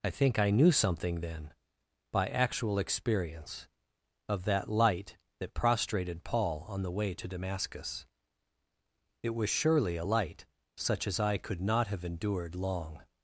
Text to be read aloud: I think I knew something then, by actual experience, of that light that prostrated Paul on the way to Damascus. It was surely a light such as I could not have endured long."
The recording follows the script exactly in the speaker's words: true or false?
true